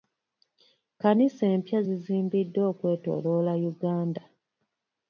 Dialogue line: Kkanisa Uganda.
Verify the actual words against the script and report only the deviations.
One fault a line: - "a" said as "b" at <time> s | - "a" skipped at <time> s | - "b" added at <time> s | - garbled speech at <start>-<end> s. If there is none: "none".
- "empya zizimbiddwa okwetooloola" added at 1.6 s